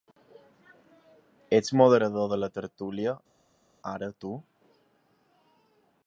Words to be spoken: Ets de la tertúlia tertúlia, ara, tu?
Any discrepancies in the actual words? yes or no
yes